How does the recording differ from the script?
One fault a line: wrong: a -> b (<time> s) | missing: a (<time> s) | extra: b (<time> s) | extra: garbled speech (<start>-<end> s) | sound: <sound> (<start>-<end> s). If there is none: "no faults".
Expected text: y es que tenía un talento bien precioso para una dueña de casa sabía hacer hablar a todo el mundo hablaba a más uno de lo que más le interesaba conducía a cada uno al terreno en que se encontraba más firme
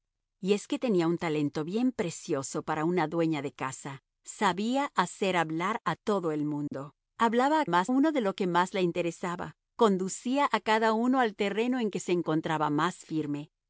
sound: dropout (6.7-6.7 s)